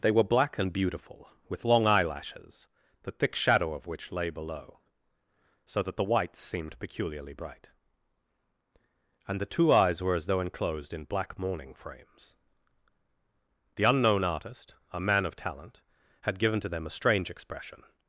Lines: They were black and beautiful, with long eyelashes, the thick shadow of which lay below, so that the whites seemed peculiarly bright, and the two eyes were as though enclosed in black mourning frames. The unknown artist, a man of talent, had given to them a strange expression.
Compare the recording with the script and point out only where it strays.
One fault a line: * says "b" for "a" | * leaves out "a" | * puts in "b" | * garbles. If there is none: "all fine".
all fine